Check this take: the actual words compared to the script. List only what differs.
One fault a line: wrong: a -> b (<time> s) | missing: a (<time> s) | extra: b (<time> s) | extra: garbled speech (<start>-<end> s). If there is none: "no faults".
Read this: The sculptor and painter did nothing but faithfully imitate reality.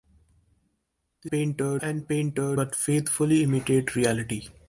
wrong: sculptor -> painter (1.3 s)
missing: did nothing (2.6 s)